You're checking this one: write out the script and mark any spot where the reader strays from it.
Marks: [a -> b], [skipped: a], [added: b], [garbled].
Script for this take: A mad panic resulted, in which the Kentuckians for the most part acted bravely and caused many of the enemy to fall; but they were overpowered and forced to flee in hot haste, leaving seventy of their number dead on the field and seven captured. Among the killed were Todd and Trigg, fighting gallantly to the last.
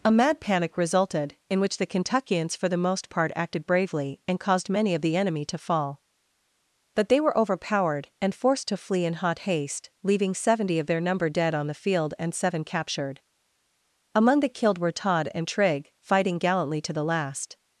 A mad panic resulted, in which the Kentuckians for the most part acted bravely and caused many of the enemy to fall; but they were overpowered and forced to flee in hot haste, leaving seventy of their number dead on the field and seven captured. Among the killed were Todd and Trigg, fighting gallantly to the last.